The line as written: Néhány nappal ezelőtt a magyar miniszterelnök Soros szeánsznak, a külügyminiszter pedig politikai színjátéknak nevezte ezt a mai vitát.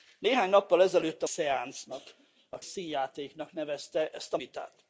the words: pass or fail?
fail